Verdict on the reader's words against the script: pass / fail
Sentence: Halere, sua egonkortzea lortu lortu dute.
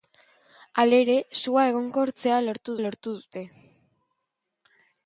pass